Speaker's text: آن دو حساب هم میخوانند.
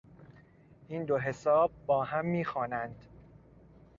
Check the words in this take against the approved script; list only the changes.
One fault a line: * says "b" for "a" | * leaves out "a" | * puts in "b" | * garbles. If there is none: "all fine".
* says "این" for "آن"
* puts in "با"